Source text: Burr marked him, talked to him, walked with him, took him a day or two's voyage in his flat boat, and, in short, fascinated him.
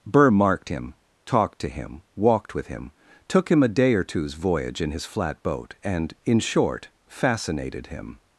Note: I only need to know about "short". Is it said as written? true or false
true